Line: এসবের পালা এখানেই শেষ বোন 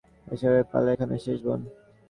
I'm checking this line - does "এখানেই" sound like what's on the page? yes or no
yes